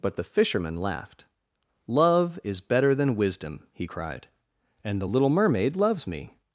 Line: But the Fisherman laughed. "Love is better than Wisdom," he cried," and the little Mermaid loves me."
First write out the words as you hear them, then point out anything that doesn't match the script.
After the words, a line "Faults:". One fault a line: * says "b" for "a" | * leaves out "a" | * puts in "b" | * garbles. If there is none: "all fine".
But the Fisherman laughed. "Love is better than Wisdom," he cried," and the little Mermaid loves me."
Faults:
all fine